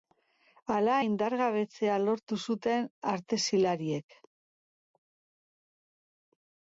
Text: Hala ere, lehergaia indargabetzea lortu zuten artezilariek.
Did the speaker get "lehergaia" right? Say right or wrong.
wrong